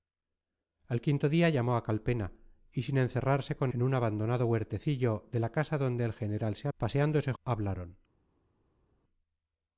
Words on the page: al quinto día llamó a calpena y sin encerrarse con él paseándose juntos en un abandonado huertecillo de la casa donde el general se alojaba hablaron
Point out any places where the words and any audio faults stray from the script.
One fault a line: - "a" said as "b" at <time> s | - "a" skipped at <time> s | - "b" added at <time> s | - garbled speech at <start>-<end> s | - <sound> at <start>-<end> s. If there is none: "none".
- "él paseándose juntos" skipped at 3.7 s
- "alojaba" said as "paseándose" at 6.8 s